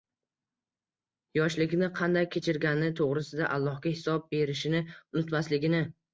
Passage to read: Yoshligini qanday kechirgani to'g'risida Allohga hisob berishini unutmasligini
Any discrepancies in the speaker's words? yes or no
no